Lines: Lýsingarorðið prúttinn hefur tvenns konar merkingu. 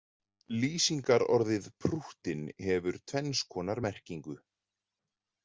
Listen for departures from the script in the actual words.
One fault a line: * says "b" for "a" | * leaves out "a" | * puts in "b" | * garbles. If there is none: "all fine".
all fine